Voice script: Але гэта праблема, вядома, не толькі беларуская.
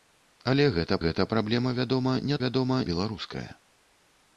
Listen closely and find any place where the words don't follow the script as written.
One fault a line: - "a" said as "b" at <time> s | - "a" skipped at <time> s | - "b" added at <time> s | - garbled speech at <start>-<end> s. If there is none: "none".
- "гэта" added at 1.0 s
- "толькі" said as "вядома" at 2.4 s